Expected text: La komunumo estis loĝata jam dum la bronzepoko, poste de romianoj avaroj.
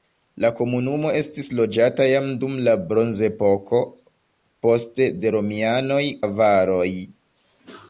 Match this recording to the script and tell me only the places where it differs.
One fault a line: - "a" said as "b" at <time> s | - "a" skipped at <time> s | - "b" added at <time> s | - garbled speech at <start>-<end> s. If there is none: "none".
none